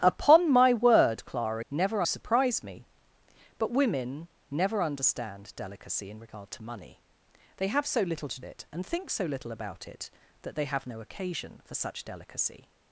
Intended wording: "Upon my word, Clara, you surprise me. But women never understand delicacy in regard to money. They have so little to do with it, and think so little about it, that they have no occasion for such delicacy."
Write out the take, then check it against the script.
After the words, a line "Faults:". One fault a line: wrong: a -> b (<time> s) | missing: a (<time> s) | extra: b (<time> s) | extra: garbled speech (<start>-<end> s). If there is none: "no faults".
"Upon my word, Clara, never surprise me. But women never understand delicacy in regard to money. They have so little to it, and think so little about it, that they have no occasion for such delicacy."
Faults:
wrong: you -> never (1.7 s)
missing: do with (8.4 s)